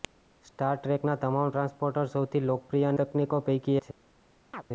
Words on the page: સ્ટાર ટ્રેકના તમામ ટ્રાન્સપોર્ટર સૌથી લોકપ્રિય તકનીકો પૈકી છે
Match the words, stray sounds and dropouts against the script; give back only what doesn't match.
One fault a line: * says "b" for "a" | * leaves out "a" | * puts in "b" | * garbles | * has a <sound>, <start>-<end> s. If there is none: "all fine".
* has a chirp, 4.5-4.6 s